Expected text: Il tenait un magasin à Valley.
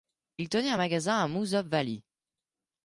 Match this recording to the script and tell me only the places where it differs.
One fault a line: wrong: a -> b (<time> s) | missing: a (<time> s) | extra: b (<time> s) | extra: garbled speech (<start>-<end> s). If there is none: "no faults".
extra: Moosup (1.3 s)